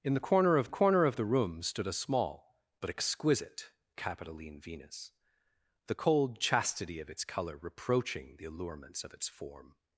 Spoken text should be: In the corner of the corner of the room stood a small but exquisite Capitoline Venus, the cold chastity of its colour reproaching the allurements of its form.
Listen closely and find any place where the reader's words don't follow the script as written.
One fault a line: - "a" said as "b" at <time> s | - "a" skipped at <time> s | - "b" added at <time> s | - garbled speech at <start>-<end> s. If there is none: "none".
none